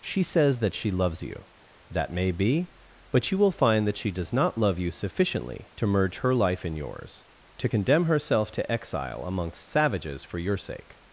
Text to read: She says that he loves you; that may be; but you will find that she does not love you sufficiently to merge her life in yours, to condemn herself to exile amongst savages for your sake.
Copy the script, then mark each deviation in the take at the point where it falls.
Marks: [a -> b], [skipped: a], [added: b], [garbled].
She says that [he -> she] loves you; that may be; but you will find that she does not love you sufficiently to merge her life in yours, to condemn herself to exile amongst savages for your sake.